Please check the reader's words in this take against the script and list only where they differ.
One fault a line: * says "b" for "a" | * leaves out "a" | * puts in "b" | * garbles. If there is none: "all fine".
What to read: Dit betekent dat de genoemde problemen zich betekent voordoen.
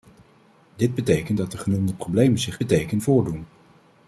all fine